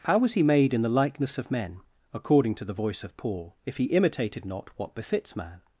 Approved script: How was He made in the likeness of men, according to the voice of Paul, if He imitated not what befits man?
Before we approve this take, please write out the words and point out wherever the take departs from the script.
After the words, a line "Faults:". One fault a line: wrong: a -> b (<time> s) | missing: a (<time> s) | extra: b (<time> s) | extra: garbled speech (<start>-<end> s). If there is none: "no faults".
How was He made in the likeness of men, according to the voice of Paul, if He imitated not what befits man?
Faults:
no faults